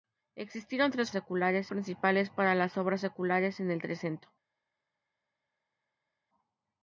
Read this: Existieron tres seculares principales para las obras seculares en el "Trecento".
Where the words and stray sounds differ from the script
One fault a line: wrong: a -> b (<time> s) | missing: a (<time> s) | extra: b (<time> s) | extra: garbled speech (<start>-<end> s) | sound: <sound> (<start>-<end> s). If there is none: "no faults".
no faults